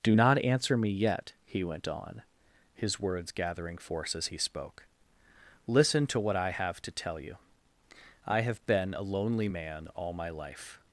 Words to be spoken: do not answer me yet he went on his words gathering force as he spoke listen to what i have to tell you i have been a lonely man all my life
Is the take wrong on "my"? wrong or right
right